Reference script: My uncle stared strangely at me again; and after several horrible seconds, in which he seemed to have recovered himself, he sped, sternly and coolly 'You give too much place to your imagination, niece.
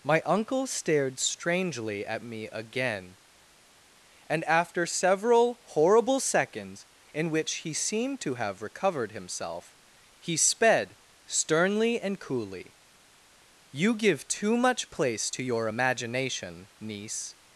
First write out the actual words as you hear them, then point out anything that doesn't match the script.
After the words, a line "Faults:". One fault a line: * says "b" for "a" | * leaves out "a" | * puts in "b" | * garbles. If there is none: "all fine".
My uncle stared strangely at me again; and after several horrible seconds, in which he seemed to have recovered himself, he sped, sternly and coolly 'You give too much place to your imagination, niece.
Faults:
all fine